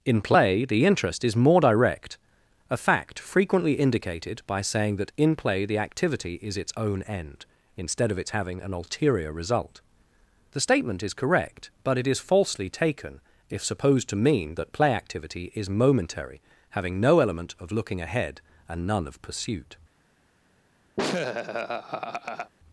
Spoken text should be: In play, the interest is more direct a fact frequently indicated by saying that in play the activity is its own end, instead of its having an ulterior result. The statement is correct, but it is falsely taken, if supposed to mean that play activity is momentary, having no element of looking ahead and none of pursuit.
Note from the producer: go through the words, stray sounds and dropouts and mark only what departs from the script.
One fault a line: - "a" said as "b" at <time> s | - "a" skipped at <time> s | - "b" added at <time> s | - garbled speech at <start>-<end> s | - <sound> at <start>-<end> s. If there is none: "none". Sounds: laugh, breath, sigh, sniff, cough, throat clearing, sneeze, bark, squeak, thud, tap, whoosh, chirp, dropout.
- laugh at 21.0-22.5 s